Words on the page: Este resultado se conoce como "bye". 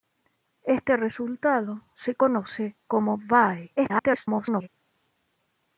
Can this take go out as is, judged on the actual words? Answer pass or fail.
fail